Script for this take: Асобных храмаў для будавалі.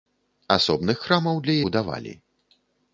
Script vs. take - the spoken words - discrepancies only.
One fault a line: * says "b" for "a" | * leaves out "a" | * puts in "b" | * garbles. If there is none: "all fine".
all fine